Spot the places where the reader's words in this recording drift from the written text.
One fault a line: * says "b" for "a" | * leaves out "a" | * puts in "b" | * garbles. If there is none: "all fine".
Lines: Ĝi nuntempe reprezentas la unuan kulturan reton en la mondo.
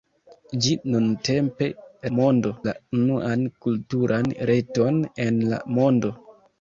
* says "mondo" for "reprezentas"